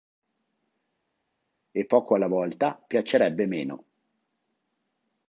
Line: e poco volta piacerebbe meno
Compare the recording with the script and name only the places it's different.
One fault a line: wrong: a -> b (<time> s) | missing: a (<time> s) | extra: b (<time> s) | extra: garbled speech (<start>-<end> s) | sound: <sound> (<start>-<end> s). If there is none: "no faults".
extra: alla (2.1 s)